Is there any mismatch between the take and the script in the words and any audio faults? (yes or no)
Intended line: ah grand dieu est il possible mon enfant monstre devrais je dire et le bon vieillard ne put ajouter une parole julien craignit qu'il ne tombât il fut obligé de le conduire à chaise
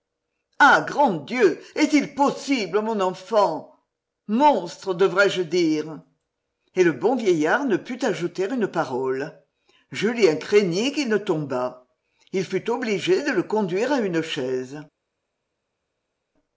yes